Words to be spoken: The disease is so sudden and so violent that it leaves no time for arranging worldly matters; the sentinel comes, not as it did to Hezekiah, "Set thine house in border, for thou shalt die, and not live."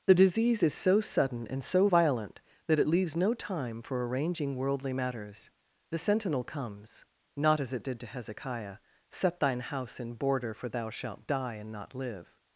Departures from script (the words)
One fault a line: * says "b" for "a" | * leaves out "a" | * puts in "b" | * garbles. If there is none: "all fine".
all fine